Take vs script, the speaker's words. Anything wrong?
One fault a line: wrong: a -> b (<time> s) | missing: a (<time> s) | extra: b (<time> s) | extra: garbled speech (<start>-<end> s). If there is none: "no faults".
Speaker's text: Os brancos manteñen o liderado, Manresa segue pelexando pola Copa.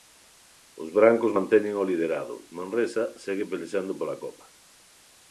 no faults